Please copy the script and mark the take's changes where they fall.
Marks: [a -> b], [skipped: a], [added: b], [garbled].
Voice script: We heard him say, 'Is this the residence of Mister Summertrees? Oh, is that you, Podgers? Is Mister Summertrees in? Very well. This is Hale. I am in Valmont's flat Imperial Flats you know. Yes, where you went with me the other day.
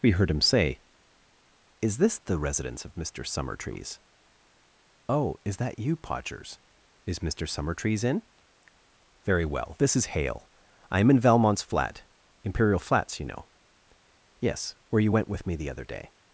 We heard him say, 'Is this the residence of Mister Summertrees? Oh, is that you, Podgers? Is Mister Summertrees in? Very well. This is Hale. I am in Valmont's flat Imperial Flats you know. Yes, where you went with me the other day.